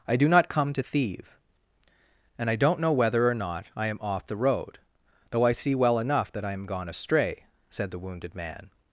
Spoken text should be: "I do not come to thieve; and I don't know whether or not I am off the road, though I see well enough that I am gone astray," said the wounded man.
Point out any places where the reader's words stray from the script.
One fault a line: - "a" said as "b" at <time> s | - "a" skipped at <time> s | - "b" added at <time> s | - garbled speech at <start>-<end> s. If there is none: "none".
none